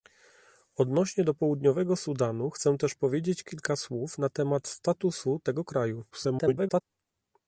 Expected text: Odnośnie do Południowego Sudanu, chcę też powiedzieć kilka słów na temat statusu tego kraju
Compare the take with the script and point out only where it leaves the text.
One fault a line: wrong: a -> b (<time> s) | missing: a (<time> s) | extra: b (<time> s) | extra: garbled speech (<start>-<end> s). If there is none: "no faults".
extra: garbled speech (6.1-6.8 s)